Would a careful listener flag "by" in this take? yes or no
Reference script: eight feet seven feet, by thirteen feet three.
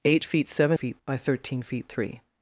no